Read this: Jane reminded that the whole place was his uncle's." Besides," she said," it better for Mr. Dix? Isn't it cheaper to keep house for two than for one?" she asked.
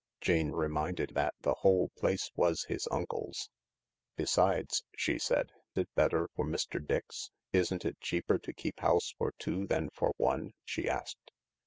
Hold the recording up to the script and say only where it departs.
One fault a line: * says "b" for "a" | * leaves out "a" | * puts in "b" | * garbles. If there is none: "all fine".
all fine